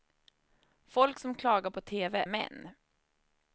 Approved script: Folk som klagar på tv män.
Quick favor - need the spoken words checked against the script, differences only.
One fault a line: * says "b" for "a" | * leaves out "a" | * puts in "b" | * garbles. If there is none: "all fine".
all fine